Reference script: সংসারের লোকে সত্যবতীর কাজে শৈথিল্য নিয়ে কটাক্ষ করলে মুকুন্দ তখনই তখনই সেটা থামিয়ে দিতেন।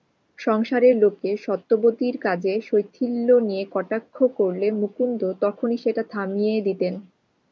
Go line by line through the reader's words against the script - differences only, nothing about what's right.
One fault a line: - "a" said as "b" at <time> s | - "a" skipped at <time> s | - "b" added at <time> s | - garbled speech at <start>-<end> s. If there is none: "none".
- "তখনই" skipped at 5.8 s